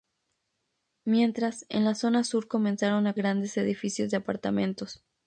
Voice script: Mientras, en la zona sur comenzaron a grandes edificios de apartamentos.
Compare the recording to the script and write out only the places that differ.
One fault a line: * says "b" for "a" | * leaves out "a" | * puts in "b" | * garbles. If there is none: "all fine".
all fine